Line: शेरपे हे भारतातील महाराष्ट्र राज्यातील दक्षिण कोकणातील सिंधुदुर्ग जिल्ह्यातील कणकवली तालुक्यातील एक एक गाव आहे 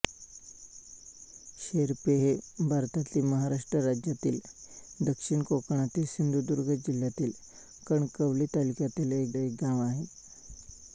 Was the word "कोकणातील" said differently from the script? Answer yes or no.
no